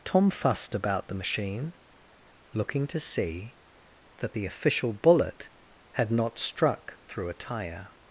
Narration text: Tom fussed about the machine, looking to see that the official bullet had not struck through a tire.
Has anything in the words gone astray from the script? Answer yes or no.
no